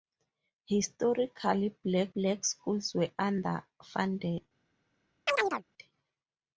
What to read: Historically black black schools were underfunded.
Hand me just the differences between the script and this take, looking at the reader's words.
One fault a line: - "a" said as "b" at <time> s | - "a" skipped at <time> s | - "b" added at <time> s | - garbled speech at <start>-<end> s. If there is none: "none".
none